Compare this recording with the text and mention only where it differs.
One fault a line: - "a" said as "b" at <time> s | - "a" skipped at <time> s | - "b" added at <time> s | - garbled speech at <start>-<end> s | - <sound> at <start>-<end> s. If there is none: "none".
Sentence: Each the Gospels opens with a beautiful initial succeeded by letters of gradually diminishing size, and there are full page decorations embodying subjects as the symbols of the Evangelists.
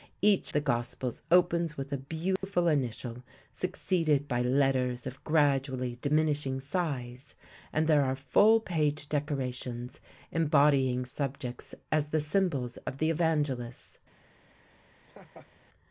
- dropout at 2.4-2.4 s
- laugh at 15.0-15.5 s